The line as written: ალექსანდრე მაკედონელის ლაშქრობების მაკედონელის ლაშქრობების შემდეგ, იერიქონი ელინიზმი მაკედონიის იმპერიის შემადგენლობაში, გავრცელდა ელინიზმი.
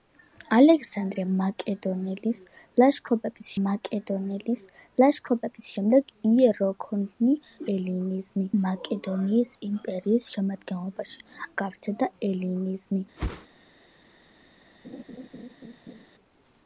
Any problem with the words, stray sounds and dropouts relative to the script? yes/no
yes